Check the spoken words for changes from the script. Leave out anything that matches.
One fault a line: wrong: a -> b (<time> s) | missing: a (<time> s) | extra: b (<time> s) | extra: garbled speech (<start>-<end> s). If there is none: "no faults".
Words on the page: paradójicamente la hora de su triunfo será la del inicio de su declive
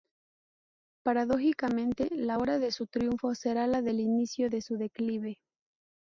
no faults